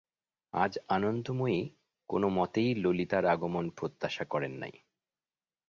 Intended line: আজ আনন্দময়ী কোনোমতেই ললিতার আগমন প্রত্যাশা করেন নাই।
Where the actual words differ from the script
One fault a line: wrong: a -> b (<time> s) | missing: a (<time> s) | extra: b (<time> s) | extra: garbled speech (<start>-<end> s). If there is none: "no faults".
no faults